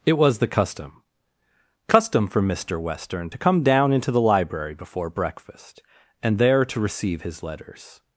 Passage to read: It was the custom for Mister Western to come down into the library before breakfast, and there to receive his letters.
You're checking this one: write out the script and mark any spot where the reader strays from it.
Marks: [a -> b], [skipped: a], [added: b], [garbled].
It was the custom [added: custom] for Mister Western to come down into the library before breakfast, and there to receive his letters.